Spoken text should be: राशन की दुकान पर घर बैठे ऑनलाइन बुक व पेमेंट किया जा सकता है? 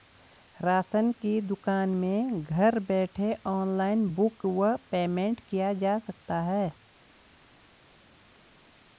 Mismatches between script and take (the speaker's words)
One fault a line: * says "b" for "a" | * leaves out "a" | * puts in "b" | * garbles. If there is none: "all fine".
* says "में" for "पर"